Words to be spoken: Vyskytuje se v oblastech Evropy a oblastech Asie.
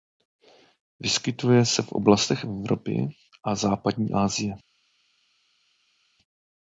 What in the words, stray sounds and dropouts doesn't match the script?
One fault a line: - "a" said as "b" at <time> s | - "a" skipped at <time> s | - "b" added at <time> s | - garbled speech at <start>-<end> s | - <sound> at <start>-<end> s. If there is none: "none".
- "oblastech" said as "západní" at 3.6 s